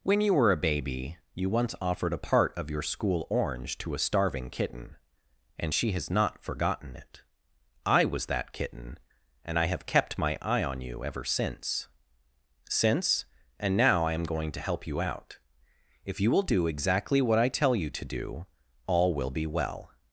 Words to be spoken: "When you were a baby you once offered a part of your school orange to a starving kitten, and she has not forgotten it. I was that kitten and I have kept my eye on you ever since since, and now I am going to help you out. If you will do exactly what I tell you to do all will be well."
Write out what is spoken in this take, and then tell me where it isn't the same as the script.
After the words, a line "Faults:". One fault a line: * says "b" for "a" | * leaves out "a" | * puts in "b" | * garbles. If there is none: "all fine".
"When you were a baby you once offered a part of your school orange to a starving kitten, and she has not forgotten it. I was that kitten and I have kept my eye on you ever since since, and now I am going to help you out. If you will do exactly what I tell you to do all will be well."
Faults:
all fine